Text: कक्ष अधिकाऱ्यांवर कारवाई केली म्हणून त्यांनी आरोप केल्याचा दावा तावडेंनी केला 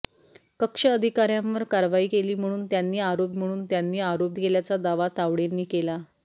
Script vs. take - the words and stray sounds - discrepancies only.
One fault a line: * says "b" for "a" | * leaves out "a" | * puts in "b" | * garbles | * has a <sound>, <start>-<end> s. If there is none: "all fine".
* puts in "म्हणून त्यांनी आरोप"